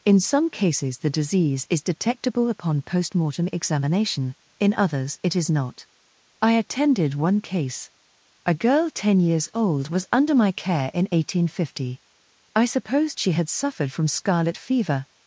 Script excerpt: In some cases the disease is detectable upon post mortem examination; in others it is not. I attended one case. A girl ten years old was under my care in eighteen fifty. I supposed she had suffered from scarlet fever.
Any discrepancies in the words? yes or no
no